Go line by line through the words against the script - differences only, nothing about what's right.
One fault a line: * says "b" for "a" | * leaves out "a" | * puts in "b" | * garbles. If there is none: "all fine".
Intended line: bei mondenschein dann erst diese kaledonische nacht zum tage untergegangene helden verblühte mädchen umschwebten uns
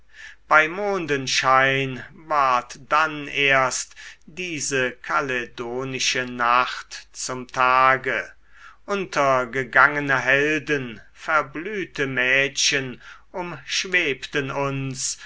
* puts in "ward"